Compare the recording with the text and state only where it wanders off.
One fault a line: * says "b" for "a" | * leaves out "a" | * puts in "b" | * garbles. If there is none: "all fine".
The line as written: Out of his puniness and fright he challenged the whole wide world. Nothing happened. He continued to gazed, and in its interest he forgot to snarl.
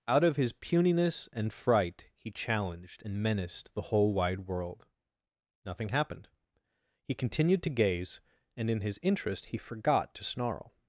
* puts in "and menaced"
* says "gaze" for "gazed"
* says "his" for "its"